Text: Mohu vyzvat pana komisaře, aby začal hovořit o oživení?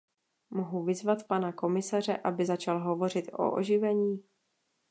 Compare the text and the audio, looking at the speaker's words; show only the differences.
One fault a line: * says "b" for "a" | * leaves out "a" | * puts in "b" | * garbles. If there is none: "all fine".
all fine